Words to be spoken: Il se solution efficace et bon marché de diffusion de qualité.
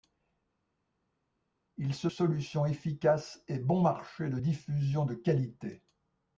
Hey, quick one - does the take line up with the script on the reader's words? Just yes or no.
yes